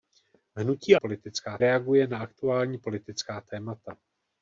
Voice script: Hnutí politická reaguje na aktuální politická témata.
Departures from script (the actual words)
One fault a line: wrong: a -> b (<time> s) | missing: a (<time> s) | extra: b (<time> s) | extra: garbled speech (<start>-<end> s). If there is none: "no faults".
no faults